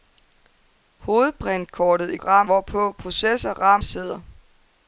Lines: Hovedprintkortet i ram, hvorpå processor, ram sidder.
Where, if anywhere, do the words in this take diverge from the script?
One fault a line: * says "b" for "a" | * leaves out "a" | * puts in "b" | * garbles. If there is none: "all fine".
all fine